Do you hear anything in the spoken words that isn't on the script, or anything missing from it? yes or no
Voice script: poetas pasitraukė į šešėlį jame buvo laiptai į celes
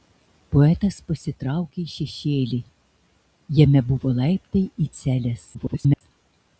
yes